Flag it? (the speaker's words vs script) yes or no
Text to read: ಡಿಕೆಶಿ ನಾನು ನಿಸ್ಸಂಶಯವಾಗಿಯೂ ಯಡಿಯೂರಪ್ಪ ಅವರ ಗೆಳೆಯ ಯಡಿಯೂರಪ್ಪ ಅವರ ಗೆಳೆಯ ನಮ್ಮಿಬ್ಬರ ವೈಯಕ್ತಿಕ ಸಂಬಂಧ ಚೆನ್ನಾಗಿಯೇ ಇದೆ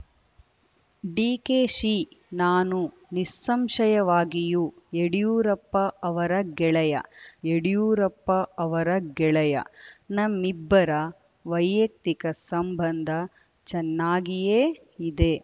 no